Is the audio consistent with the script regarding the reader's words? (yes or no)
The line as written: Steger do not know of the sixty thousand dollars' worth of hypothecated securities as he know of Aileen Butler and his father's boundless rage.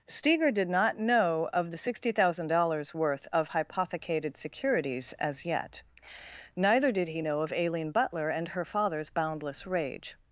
no